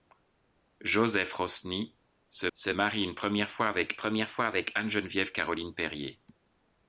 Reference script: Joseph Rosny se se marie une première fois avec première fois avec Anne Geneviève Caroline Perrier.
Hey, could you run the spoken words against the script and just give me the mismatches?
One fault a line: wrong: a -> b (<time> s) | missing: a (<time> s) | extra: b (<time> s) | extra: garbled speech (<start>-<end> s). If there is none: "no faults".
no faults